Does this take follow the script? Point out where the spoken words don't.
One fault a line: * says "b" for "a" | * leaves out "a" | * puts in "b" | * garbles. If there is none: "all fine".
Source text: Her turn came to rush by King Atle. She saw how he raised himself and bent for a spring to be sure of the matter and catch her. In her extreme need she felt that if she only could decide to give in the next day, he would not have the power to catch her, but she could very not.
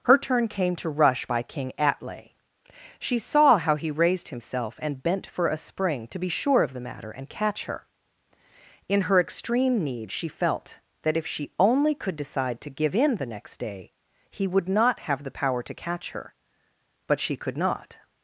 * leaves out "very"